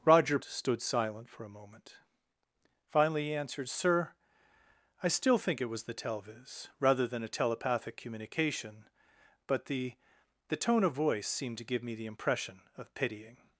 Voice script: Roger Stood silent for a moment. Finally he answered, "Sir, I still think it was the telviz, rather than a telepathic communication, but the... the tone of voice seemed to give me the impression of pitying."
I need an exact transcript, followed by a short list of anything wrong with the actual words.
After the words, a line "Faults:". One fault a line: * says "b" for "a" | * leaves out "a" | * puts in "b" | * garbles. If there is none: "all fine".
Roger Stood silent for a moment. Finally he answered, "Sir, I still think it was the telviz, rather than a telepathic communication, but the... the tone of voice seemed to give me the impression of pitying."
Faults:
all fine